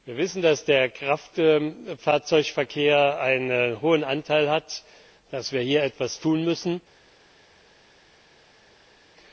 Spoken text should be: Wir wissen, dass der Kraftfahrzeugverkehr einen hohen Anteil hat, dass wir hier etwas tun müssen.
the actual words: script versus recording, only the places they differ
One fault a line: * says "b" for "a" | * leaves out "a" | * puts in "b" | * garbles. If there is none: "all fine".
all fine